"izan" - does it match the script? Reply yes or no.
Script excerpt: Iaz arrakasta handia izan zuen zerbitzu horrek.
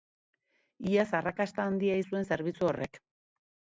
no